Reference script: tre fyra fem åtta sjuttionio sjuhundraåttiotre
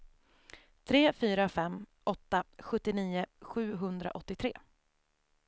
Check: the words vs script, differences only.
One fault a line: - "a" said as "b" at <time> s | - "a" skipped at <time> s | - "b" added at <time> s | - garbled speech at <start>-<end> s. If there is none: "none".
none